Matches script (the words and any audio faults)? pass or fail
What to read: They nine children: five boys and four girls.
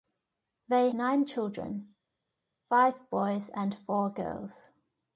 pass